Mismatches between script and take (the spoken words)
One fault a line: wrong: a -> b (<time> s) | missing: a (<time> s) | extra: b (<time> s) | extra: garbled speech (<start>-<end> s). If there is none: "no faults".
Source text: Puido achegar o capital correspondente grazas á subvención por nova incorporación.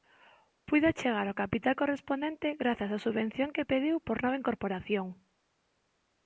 extra: que pediu (3.5 s)